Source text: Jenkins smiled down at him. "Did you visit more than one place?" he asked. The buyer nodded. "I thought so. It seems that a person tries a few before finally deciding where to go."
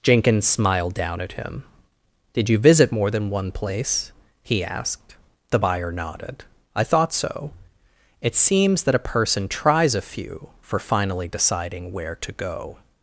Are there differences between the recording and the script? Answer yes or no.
yes